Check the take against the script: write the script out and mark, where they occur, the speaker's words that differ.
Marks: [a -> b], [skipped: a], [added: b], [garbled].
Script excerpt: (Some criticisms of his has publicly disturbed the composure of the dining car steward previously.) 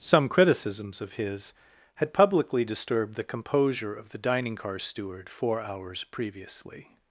(Some criticisms of his [has -> had] publicly disturbed the composure of the dining car steward [added: four hours] previously.)